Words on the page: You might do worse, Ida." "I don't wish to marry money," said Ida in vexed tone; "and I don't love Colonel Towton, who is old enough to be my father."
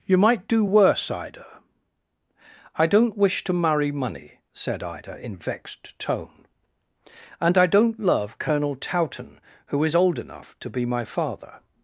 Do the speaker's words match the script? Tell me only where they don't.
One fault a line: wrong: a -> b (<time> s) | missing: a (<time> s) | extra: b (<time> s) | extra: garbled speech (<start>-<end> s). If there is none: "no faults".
no faults